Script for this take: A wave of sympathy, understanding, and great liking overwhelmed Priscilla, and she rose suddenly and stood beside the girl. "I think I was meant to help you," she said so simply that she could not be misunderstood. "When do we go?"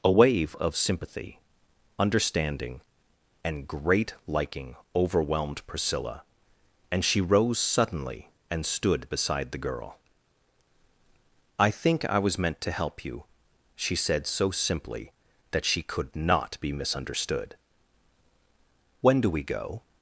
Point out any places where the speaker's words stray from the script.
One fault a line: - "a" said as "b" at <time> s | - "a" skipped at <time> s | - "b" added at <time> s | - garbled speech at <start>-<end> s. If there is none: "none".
none